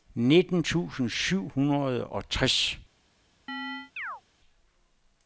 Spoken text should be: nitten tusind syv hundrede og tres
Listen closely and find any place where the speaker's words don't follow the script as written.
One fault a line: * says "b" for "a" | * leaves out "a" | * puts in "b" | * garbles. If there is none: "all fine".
all fine